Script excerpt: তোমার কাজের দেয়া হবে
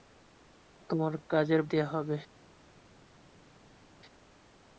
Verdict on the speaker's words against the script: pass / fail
pass